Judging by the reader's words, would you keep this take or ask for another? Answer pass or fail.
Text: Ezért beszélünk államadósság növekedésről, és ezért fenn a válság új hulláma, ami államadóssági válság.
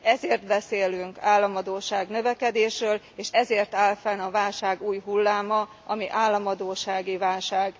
fail